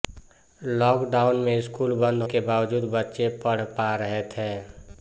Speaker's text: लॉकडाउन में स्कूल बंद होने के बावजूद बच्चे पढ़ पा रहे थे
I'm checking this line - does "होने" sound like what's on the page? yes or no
no